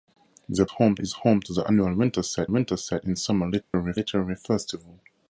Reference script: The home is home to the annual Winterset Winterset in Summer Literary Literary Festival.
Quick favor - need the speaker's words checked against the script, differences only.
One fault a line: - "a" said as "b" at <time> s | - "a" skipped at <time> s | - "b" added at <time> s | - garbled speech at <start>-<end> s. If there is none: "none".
none